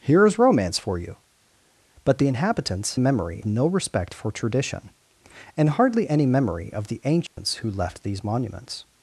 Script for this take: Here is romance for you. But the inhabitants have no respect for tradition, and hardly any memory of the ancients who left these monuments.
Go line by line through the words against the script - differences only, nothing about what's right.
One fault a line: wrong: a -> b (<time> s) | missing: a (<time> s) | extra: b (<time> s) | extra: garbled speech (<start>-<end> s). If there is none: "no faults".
wrong: have -> memory (2.9 s)